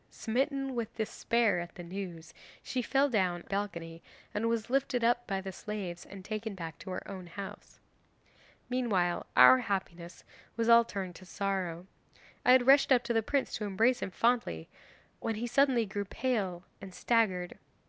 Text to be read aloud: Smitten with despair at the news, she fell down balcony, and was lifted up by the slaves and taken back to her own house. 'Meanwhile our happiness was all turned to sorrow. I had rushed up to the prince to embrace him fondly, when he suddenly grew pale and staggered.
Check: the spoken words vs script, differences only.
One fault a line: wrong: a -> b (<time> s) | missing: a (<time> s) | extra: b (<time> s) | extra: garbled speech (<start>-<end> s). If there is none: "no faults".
no faults